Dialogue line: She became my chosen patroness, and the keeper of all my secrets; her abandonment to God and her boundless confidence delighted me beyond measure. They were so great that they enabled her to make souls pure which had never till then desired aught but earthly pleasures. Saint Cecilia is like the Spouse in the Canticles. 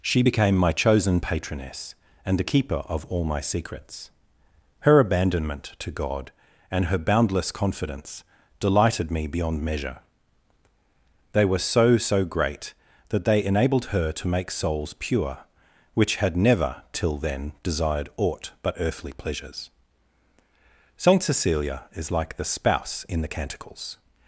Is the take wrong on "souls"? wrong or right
right